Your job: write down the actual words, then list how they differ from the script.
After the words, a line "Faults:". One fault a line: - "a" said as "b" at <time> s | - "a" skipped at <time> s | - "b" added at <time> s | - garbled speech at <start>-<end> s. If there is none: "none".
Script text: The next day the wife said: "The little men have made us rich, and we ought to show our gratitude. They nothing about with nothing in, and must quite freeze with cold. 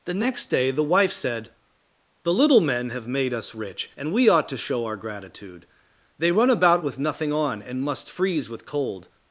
The next day the wife said: "The little men have made us rich, and we ought to show our gratitude. They run about with nothing on, and must freeze with cold.
Faults:
- "nothing" said as "run" at 6.3 s
- "in" said as "on" at 7.3 s
- "quite" skipped at 8.1 s